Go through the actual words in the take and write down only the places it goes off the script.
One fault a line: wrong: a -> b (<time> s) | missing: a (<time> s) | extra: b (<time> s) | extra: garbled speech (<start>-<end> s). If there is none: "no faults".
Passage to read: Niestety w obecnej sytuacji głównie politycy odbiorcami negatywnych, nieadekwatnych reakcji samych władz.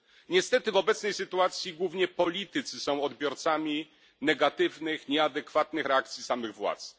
extra: są (2.8 s)